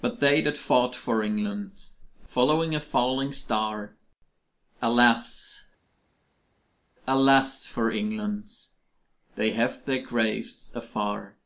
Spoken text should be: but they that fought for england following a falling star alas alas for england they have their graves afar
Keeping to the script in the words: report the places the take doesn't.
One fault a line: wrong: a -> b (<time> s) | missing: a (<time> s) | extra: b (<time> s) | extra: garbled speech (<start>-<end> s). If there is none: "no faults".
no faults